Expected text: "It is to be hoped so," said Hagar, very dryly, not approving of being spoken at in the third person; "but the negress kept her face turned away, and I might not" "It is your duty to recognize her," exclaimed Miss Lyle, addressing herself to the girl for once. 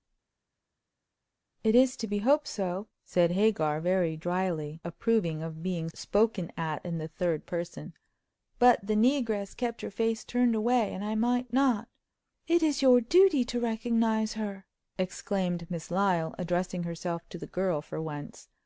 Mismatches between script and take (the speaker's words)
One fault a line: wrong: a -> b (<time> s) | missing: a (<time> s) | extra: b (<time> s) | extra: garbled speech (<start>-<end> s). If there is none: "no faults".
missing: not (4.8 s)